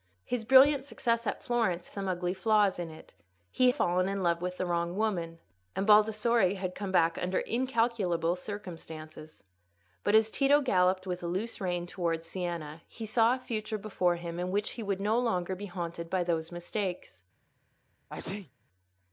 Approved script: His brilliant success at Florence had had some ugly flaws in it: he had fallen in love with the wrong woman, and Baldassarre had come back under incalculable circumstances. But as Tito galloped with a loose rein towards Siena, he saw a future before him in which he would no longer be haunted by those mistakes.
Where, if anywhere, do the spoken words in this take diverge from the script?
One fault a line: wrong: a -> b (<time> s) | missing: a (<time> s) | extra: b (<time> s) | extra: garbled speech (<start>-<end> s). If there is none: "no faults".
missing: had had (1.9 s)
missing: had (3.7 s)